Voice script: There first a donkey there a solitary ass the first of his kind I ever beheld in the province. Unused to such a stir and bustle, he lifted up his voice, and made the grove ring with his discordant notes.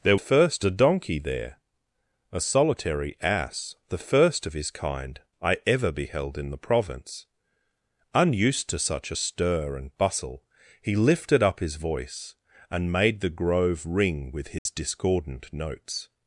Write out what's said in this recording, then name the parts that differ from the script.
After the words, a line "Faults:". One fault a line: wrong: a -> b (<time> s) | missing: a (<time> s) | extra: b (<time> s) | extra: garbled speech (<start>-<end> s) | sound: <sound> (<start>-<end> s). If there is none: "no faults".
There first a donkey there a solitary ass the first of his kind I ever beheld in the province. Unused to such a stir and bustle, he lifted up his voice, and made the grove ring with his discordant notes.
Faults:
sound: dropout (14.6-14.7 s)